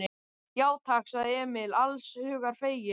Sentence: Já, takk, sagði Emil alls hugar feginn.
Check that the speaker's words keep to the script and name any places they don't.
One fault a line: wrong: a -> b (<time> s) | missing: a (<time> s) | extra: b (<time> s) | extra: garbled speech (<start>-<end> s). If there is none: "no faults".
no faults